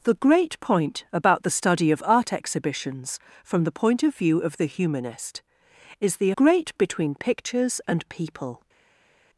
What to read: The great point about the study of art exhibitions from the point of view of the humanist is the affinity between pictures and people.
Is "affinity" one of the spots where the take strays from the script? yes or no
yes